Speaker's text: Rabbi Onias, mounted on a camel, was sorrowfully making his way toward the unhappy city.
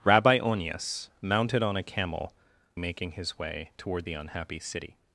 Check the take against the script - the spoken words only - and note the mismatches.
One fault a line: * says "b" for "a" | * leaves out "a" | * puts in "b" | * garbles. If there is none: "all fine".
* leaves out "was sorrowfully"